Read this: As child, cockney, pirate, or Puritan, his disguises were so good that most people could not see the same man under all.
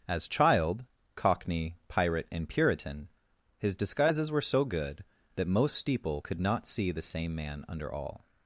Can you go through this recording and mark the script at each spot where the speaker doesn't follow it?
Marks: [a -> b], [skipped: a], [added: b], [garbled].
As child, cockney, pirate, [or -> and] Puritan, his disguises were so good that most [people -> steeple] could not see the same man under all.